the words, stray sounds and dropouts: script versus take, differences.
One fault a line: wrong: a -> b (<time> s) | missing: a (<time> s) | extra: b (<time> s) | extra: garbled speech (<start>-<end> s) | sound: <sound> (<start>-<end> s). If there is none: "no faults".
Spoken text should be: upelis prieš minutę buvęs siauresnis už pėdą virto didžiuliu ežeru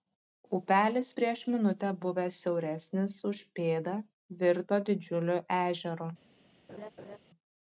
sound: laugh (6.7-7.2 s)